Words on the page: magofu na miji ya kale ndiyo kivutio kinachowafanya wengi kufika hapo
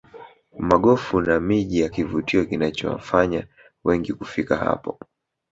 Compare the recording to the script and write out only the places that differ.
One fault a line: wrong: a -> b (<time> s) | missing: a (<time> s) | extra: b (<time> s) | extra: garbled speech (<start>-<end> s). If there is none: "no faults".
missing: kale ndiyo (1.9 s)